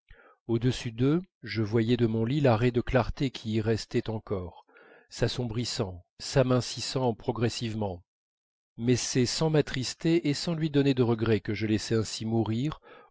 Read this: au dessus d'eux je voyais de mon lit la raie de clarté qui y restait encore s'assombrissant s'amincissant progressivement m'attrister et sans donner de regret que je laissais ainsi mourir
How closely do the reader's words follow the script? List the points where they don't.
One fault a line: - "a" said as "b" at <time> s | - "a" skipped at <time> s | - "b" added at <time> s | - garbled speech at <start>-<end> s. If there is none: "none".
- "mais c'est sans" added at 8.8 s
- "lui" added at 10.5 s